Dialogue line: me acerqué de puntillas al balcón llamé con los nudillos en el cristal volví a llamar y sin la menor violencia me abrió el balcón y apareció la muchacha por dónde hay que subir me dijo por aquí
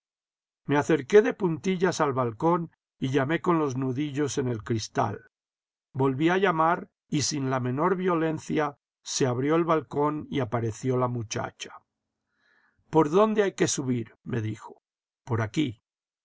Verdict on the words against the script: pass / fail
fail